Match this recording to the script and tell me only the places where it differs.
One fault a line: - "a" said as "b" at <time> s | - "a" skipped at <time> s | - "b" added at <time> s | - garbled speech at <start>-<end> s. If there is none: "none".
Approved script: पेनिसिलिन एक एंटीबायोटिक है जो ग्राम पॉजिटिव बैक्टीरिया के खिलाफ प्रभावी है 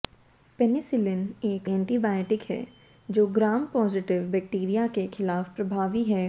none